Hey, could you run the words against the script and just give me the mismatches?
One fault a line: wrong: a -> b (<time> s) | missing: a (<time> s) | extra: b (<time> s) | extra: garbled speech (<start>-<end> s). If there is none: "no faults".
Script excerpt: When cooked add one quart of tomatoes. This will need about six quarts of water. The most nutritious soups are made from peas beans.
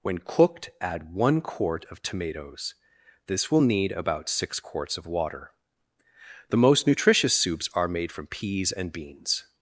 extra: and (8.7 s)